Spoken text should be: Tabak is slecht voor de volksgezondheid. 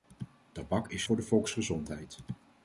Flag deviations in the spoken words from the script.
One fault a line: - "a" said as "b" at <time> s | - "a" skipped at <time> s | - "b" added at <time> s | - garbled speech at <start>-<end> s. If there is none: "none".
- "slecht" skipped at 1.0 s